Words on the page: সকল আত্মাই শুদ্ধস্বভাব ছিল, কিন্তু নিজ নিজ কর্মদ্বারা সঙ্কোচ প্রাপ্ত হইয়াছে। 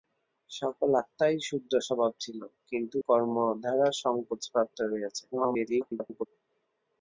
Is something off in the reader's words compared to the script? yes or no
yes